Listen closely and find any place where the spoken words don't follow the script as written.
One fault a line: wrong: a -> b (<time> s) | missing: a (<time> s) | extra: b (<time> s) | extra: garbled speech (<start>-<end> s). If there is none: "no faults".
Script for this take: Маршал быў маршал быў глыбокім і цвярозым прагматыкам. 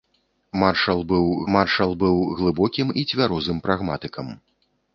no faults